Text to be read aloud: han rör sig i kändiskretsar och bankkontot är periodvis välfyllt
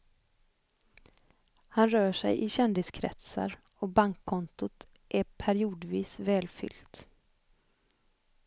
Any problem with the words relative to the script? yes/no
no